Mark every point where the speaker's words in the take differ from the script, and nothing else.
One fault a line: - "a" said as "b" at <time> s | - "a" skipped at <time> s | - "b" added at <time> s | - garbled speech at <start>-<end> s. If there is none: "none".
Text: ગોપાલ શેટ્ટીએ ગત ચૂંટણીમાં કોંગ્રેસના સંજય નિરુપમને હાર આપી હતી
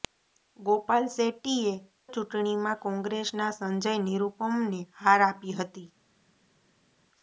- "ગત" skipped at 1.7 s